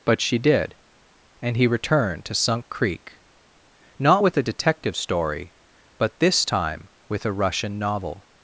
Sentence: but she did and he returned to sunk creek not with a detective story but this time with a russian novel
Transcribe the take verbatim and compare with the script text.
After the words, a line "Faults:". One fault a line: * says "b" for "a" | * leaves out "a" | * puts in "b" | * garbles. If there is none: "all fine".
but she did and he returned to sunk creek not with a detective story but this time with a russian novel
Faults:
all fine